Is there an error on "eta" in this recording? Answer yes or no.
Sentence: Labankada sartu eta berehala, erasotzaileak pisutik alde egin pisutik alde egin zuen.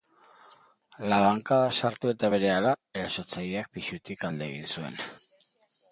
no